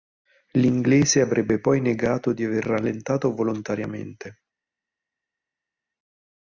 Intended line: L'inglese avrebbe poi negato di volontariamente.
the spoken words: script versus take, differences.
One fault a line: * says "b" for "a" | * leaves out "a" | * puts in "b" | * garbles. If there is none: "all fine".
* puts in "aver rallentato"